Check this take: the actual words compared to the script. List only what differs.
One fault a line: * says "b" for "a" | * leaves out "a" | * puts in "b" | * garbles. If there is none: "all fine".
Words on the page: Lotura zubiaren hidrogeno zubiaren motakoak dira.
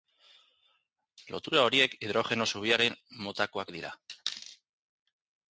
* says "horiek" for "zubiaren"